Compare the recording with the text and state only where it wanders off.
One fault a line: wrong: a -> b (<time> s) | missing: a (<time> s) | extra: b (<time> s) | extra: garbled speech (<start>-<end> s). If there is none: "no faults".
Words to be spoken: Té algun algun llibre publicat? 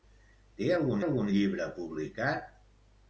no faults